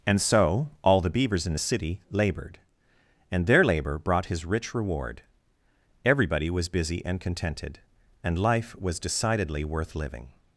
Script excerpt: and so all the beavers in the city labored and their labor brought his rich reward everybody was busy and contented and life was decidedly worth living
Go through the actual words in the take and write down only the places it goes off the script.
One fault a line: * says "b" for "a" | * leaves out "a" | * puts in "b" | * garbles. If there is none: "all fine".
all fine